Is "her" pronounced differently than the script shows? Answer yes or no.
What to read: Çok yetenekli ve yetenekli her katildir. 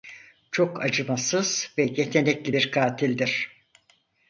yes